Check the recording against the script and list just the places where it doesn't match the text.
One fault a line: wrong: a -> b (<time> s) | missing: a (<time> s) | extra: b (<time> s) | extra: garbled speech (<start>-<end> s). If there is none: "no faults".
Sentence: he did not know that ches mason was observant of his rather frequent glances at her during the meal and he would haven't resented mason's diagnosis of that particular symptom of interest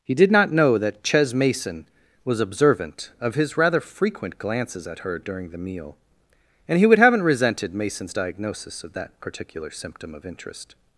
no faults